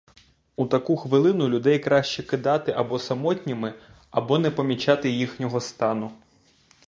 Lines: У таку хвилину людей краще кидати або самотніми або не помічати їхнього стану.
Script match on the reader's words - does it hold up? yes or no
yes